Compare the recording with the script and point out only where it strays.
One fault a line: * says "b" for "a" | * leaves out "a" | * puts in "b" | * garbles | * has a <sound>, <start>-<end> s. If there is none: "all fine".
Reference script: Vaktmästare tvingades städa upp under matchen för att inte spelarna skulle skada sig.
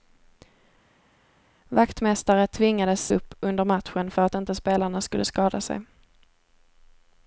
* leaves out "städa"